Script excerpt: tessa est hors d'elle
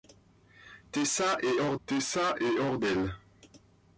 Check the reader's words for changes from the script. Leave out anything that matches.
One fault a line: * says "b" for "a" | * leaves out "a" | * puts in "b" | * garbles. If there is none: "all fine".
* puts in "tessa est hors"